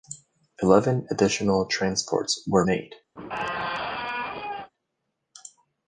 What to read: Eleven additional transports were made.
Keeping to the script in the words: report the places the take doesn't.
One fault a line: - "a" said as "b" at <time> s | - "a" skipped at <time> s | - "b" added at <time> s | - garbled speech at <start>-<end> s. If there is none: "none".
none